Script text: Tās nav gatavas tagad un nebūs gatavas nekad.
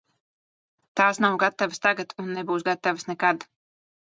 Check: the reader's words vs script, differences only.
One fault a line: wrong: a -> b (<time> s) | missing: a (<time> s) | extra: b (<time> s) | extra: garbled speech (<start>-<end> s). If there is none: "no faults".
no faults